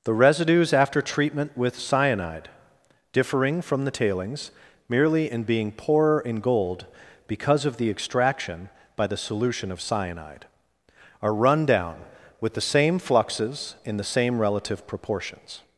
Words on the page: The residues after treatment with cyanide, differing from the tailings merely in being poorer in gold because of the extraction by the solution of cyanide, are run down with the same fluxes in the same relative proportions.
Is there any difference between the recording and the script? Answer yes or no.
no